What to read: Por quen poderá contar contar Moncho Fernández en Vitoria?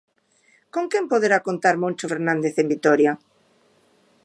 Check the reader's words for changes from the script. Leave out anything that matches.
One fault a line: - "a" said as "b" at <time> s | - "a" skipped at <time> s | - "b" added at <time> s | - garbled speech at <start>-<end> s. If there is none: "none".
- "Por" said as "Con" at 0.7 s
- "contar" skipped at 1.8 s